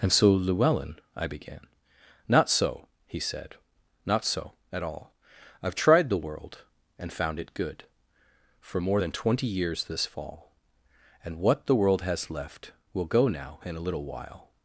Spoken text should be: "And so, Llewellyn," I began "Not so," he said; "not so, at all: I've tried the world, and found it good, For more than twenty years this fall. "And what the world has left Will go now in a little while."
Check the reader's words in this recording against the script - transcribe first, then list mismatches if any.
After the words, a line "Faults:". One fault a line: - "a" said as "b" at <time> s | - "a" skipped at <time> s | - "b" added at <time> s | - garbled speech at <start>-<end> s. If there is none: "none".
"And so, Llewellyn," I began "Not so," he said; "not so, at all: I've tried the world, and found it good, For more than twenty years this fall. "And what the world has left Will go now in a little while."
Faults:
none